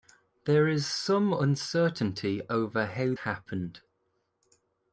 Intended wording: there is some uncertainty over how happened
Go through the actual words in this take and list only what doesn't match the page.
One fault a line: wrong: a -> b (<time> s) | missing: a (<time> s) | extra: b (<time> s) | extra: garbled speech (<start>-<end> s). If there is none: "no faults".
no faults